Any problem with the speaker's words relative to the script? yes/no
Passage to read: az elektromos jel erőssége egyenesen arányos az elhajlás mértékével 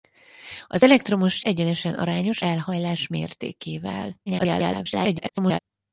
yes